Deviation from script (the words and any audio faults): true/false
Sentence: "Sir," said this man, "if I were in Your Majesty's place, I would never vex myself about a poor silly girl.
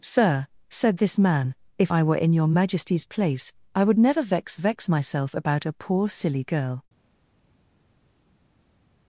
true